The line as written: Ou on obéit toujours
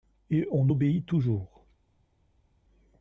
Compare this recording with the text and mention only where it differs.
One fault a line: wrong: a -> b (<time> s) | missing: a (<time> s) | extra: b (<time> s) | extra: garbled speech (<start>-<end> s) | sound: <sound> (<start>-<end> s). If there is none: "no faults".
wrong: Ou -> Et (0.3 s)